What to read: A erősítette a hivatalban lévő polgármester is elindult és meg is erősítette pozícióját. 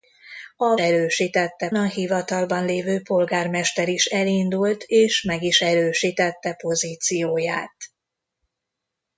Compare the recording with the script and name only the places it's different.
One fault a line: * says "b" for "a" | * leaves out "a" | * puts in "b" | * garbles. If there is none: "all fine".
all fine